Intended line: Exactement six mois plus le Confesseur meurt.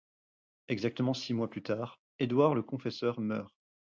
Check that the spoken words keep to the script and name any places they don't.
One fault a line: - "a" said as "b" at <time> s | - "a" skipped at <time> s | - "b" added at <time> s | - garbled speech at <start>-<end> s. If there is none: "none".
- "tard Édouard" added at 1.6 s